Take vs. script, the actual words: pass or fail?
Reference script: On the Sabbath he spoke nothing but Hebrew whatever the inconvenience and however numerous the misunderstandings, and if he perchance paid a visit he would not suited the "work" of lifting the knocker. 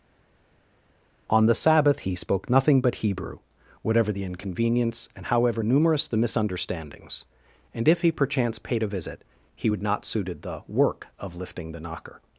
pass